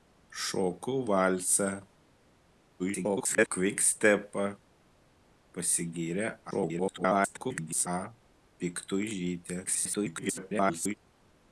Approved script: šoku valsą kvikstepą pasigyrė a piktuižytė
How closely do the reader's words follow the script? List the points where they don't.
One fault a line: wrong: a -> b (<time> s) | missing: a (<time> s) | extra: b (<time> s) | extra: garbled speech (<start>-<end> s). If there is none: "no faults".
extra: garbled speech (2.8-3.5 s)
extra: garbled speech (6.5-7.9 s)
extra: garbled speech (9.7-11.0 s)